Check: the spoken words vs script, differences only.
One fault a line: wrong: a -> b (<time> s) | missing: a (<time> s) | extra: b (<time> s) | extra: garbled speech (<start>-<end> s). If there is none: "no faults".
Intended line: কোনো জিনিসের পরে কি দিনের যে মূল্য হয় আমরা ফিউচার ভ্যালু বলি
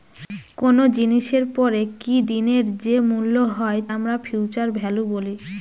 no faults